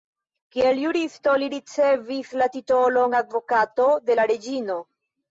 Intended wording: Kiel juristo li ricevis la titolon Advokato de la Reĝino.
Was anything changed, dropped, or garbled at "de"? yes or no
no